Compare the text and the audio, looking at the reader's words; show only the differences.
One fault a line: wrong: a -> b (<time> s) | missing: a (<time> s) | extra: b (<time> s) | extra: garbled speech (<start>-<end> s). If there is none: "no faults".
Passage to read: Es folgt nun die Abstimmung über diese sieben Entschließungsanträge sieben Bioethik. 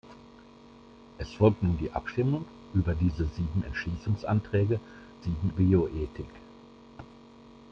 no faults